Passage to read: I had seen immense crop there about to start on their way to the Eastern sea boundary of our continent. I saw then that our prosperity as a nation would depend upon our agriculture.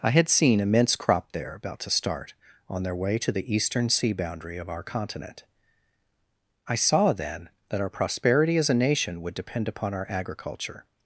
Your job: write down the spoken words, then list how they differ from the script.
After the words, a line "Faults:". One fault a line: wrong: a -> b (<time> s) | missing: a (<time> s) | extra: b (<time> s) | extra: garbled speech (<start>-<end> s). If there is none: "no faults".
I had seen immense crop there about to start on their way to the Eastern sea boundary of our continent. I saw then that our prosperity as a nation would depend upon our agriculture.
Faults:
no faults